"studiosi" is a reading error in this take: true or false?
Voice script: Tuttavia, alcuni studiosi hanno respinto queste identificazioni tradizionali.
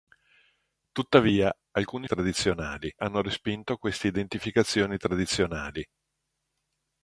true